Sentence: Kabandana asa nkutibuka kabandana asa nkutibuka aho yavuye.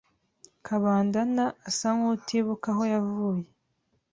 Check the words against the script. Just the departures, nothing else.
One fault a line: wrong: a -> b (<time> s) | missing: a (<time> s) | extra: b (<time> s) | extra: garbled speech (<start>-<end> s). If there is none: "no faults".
missing: kabandana asa nkutibuka (2.7 s)